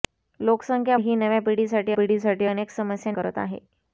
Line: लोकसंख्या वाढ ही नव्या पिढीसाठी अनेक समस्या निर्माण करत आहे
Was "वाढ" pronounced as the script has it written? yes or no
no